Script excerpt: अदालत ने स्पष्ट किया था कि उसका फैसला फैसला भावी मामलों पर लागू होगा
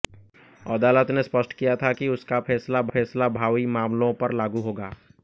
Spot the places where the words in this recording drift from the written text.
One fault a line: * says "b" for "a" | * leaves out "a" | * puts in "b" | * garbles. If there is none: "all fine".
all fine